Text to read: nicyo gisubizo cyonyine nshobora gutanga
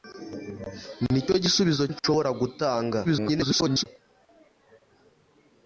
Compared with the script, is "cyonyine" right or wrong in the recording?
wrong